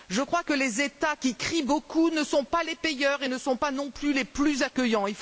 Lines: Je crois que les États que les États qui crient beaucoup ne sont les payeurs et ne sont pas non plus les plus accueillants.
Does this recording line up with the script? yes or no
no